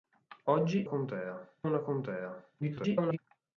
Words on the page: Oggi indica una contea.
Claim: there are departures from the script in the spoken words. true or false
true